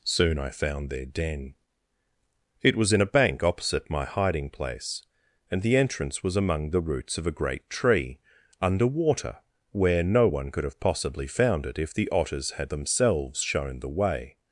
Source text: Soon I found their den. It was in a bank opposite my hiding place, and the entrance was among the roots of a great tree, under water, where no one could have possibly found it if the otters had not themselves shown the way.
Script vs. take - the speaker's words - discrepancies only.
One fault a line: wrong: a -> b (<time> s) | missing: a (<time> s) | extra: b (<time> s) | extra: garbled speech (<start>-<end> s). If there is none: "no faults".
missing: not (12.7 s)